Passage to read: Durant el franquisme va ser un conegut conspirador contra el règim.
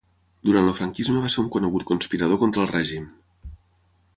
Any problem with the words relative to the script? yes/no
no